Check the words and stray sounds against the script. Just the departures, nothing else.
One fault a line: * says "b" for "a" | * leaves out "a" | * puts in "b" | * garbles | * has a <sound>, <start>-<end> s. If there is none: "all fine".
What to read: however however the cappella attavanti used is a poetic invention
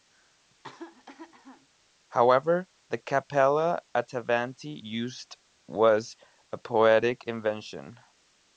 * has a cough, 0.5-1.7 s
* leaves out "however"
* says "was" for "is"